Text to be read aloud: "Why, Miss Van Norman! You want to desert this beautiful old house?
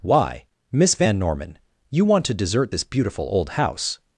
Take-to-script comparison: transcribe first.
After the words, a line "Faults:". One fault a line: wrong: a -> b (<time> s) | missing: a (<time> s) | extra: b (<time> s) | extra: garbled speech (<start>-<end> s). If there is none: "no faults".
"Why, Miss Van Norman! You want to desert this beautiful old house?
Faults:
no faults